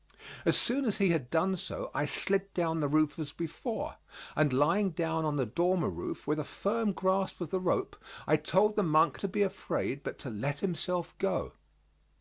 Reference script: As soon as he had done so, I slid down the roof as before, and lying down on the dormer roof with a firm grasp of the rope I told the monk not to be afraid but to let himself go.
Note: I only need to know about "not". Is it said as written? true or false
false